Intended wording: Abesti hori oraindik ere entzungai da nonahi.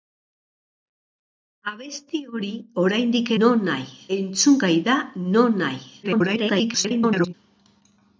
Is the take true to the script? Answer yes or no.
no